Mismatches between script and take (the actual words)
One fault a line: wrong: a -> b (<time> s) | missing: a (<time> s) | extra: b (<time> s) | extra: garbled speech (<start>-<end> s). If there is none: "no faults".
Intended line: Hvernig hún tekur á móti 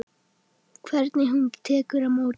no faults